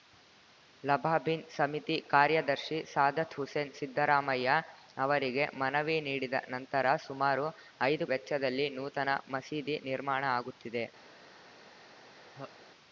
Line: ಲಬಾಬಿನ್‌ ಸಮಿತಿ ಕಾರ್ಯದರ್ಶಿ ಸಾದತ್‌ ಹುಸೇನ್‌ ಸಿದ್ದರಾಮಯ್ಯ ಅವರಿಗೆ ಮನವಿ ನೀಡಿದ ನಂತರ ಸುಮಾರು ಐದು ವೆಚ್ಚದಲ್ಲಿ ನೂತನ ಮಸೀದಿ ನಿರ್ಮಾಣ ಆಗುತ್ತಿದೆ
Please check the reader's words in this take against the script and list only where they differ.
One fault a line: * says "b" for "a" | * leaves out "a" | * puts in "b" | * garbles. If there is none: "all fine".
all fine